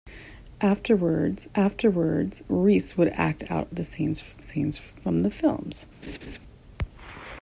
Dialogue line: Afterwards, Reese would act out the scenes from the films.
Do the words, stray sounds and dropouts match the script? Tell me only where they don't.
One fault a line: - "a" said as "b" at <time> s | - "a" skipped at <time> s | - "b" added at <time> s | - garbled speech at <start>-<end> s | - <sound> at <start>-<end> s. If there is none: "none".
- "afterwards" added at 1.6 s
- "scenes" added at 4.4 s
- laugh at 6.0-6.4 s